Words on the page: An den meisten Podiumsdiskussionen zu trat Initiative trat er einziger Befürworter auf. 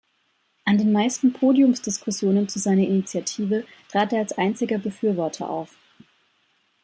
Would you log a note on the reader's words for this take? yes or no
yes